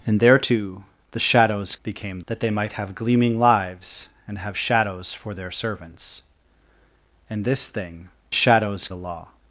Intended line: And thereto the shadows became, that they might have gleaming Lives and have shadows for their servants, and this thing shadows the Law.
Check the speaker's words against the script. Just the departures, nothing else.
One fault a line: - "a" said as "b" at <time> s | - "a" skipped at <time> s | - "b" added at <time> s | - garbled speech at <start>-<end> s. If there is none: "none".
none